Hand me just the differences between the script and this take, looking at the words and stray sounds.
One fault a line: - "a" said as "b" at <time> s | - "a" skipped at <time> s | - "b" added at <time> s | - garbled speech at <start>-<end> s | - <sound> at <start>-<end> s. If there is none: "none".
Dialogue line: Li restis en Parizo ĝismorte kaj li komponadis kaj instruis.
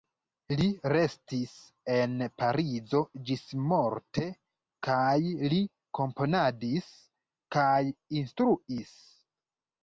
none